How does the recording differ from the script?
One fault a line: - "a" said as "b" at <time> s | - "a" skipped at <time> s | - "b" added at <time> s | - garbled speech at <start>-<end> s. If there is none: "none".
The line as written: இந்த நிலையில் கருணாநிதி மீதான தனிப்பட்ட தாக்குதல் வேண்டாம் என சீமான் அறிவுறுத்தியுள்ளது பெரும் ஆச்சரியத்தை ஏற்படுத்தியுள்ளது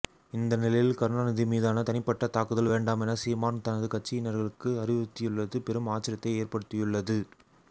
- "தனது கட்சியினர்களுக்கு" added at 3.6 s